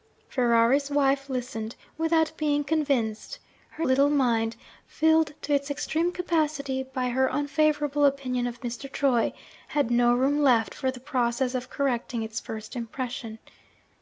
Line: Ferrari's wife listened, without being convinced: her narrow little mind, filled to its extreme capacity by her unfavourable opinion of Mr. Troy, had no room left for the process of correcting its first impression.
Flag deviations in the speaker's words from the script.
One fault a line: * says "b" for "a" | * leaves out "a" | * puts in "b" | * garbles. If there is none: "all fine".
* leaves out "narrow"